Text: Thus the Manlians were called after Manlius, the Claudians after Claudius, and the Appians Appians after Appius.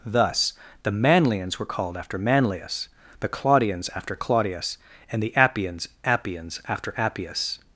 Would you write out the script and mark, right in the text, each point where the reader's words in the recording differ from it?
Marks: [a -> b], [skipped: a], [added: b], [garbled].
Thus the Manlians were called after Manlius, the Claudians after Claudius, and the Appians Appians after Appius.